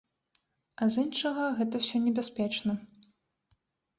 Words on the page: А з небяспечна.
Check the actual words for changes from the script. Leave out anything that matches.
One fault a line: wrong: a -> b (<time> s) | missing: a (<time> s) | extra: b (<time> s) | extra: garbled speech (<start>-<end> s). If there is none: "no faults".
extra: іншага гэта ўсё (1.1 s)